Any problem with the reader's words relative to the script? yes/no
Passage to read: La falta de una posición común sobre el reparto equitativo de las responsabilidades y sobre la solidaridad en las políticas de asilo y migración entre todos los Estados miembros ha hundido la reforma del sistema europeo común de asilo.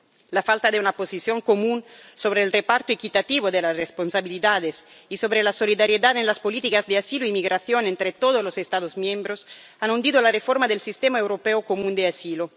no